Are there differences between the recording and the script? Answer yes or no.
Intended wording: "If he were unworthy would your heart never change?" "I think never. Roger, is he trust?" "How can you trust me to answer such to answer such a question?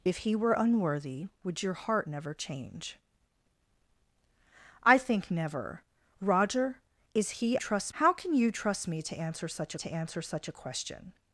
no